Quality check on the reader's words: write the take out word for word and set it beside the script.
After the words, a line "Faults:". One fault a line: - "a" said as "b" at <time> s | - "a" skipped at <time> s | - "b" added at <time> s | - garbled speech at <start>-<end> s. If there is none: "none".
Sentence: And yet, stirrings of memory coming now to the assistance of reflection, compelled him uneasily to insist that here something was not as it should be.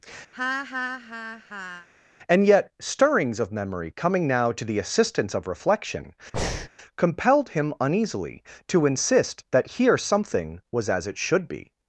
And yet, stirrings of memory coming now to the assistance of reflection, compelled him uneasily to insist that here something was as it should be.
Faults:
- "not" skipped at 10.9 s